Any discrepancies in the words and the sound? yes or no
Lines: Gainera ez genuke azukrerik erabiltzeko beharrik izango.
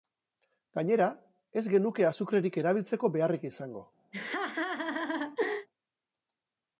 yes